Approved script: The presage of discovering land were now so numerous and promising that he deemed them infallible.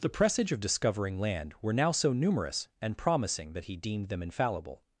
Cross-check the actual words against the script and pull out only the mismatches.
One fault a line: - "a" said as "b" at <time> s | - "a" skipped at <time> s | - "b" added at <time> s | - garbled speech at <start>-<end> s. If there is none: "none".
none